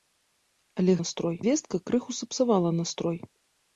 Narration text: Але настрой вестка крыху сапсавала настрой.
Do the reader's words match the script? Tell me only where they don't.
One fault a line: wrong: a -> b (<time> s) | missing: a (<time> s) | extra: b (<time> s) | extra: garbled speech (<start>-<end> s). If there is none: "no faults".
no faults